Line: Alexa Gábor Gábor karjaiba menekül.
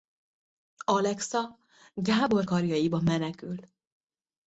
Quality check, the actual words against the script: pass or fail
fail